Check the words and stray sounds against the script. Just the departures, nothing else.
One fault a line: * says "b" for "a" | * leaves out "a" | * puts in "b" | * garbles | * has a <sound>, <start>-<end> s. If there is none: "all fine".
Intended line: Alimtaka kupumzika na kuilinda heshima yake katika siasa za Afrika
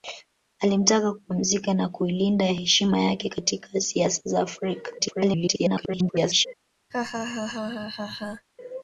* garbles
* has a laugh, 6.9-8.5 s